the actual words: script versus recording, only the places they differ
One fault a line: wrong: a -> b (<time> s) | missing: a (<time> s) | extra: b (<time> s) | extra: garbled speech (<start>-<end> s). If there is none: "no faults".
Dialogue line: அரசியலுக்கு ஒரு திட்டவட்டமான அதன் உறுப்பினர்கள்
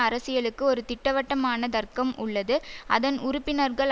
extra: தர்க்கம் உள்ளது (1.7 s)